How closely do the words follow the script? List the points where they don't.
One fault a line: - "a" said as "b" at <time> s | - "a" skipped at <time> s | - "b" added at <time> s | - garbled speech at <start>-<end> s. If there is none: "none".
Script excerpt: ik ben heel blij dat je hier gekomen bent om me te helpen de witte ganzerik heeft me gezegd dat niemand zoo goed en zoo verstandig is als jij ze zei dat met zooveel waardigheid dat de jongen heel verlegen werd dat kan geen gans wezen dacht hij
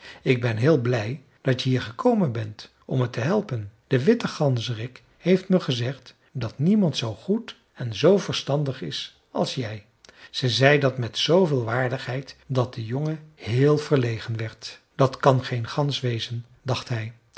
none